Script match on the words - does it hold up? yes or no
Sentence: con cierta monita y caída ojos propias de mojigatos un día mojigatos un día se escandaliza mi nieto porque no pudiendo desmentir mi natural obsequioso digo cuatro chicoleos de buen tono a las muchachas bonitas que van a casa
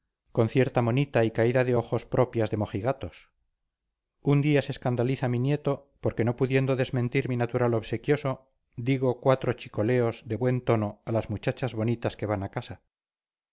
no